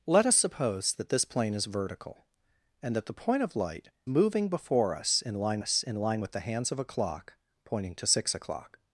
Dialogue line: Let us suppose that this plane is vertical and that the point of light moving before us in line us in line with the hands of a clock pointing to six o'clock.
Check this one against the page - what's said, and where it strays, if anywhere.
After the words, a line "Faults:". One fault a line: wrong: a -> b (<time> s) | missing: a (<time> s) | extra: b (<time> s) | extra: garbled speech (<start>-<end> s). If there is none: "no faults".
Let us suppose that this plane is vertical and that the point of light moving before us in line us in line with the hands of a clock pointing to six o'clock.
Faults:
no faults